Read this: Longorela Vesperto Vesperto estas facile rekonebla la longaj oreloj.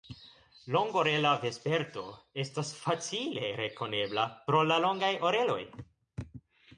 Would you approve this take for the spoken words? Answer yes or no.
no